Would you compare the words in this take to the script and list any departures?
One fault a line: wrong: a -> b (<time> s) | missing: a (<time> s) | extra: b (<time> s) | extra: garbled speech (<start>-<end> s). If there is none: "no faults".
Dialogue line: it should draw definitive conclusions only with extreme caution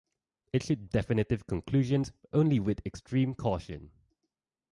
missing: draw (0.9 s)